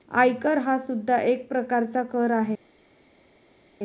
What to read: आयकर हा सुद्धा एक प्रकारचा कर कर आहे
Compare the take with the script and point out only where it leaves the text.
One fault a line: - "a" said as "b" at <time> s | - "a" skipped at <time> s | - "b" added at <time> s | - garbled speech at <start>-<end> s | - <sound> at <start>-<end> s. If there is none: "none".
- "कर" skipped at 2.3 s